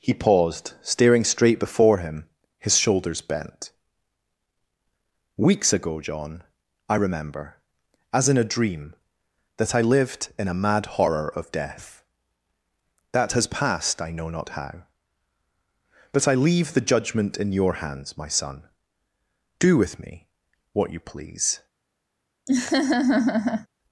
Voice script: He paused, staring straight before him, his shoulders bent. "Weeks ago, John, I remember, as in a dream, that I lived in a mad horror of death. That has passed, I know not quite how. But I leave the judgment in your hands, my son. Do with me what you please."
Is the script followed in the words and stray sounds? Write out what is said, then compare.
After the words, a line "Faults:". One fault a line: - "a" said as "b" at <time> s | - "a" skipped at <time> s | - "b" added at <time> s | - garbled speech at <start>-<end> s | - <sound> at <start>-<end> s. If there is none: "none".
He paused, staring straight before him, his shoulders bent. "Weeks ago, John, I remember, as in a dream, that I lived in a mad horror of death. That has passed, I know not how. But I leave the judgment in your hands, my son. Do with me what you please."
Faults:
- "quite" skipped at 14.5 s
- laugh at 22.5-23.7 s